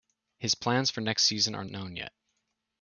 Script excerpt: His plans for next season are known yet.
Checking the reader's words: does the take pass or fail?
pass